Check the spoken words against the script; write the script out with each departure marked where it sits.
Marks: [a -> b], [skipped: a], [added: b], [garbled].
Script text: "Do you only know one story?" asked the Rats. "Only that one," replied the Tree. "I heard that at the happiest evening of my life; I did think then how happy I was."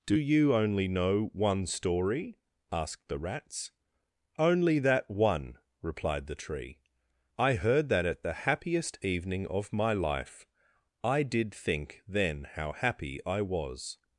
"Do you only know one story?" asked the Rats. "Only that one," replied the Tree. "I heard that at the happiest evening of my life; I did think then how happy I was."